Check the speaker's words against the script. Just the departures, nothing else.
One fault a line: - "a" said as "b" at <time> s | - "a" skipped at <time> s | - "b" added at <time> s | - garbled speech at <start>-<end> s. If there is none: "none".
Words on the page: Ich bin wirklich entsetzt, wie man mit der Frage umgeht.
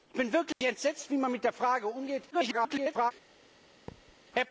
- garbled speech at 2.3-3.1 s